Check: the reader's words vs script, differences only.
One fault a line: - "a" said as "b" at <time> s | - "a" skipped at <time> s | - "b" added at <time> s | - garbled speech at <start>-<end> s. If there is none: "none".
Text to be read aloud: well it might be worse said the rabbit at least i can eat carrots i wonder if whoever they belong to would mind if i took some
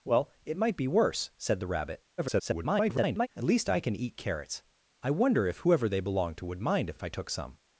- garbled speech at 2.2-3.3 s
- "if" added at 6.9 s